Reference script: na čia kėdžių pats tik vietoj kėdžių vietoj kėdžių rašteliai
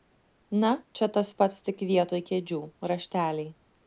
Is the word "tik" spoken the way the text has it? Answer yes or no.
yes